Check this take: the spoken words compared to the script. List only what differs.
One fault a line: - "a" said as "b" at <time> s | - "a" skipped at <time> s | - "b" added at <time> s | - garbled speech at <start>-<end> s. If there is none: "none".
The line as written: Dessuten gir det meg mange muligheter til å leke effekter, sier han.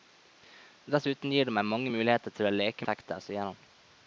none